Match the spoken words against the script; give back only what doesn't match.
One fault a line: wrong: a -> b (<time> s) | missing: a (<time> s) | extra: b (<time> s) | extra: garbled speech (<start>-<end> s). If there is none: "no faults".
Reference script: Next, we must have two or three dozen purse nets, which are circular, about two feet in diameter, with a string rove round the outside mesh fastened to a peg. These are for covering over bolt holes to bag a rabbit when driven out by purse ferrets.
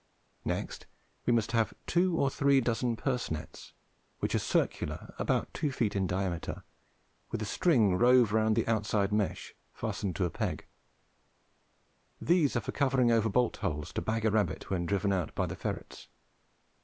wrong: purse -> the (15.4 s)